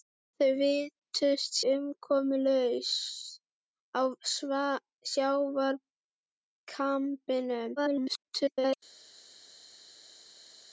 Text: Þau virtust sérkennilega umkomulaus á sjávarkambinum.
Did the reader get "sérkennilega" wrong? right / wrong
wrong